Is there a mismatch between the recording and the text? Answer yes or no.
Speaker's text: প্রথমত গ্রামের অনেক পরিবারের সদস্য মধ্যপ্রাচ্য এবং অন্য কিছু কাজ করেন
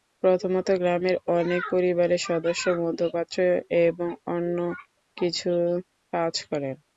no